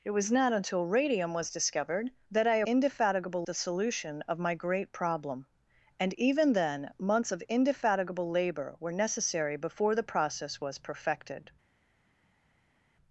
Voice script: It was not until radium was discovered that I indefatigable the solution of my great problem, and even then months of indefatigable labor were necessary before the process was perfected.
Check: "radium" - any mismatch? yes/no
no